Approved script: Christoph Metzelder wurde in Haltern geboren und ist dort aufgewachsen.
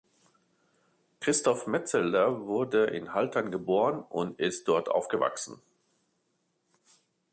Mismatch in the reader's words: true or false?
false